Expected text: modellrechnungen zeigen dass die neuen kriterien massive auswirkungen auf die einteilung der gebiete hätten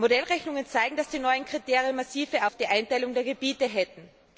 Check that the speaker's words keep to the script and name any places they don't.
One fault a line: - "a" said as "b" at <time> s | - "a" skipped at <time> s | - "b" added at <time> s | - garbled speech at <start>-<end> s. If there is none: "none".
- "auswirkungen" skipped at 2.5 s